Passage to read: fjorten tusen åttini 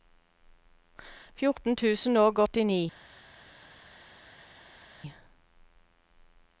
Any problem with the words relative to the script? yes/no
yes